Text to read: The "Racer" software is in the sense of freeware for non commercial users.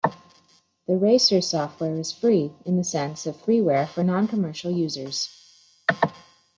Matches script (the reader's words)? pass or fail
fail